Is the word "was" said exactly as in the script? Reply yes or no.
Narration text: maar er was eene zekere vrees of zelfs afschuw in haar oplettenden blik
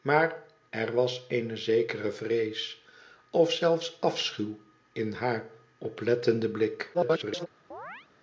yes